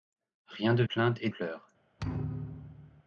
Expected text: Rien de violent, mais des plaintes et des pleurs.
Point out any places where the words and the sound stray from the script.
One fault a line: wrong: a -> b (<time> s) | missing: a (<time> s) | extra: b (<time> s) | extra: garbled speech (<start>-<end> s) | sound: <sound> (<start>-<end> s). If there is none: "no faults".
missing: violent mais des (0.8 s)
missing: des (1.3 s)
sound: thud (2.0-3.0 s)